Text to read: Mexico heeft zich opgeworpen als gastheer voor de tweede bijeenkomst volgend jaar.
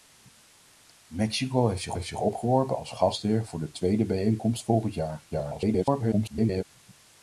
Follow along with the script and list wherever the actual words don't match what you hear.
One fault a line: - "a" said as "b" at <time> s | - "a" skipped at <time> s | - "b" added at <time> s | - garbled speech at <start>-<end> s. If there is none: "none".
- "heeft zich" added at 1.9 s
- garbled speech at 5.3-6.6 s